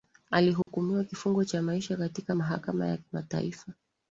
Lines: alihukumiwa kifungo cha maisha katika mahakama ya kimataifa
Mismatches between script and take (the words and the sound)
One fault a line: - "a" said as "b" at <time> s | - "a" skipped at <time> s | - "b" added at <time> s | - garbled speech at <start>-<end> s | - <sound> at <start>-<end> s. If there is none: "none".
- dropout at 0.6-0.7 s